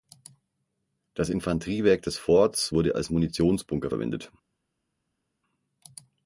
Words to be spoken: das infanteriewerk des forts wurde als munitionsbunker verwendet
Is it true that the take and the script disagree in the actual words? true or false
false